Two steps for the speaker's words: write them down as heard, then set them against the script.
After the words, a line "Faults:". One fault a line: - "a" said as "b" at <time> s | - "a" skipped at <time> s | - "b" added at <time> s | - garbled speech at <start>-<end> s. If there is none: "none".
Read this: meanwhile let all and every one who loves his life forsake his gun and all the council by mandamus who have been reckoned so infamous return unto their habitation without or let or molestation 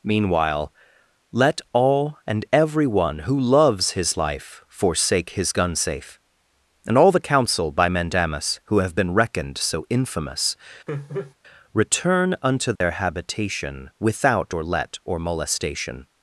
meanwhile let all and every one who loves his life forsake his gun safe and all the council by mandamus who have been reckoned so infamous return unto their habitation without or let or molestation
Faults:
- "safe" added at 5.8 s